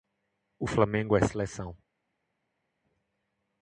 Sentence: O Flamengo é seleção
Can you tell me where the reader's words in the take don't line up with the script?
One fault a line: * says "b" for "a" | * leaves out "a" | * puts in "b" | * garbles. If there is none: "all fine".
all fine